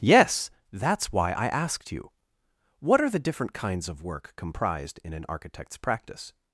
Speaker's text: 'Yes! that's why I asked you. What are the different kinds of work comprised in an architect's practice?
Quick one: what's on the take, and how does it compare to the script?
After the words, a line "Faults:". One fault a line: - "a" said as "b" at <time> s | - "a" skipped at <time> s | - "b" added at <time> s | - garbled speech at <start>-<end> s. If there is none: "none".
'Yes! that's why I asked you. What are the different kinds of work comprised in an architect's practice?
Faults:
none